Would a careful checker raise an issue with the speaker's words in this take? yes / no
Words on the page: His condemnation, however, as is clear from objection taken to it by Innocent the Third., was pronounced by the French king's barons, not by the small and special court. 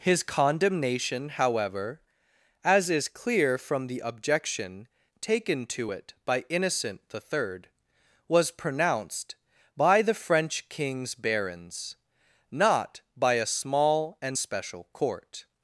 yes